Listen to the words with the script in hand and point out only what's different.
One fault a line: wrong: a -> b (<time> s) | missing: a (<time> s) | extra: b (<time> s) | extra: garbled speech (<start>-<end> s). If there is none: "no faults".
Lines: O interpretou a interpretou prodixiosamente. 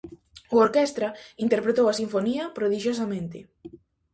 extra: orquestra (0.6 s)
wrong: interpretou -> sinfonía (2.0 s)